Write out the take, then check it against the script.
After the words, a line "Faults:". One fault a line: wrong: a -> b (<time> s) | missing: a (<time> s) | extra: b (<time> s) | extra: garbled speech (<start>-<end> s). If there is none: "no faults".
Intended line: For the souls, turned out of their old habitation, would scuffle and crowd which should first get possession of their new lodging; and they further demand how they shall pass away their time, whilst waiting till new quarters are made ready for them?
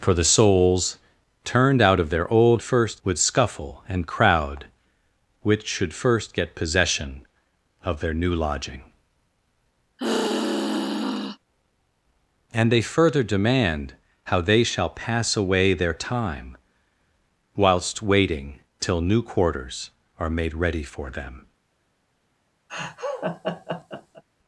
For the souls, turned out of their old first, would scuffle and crowd which should first get possession of their new lodging; and they further demand how they shall pass away their time, whilst waiting till new quarters are made ready for them?
Faults:
wrong: habitation -> first (2.6 s)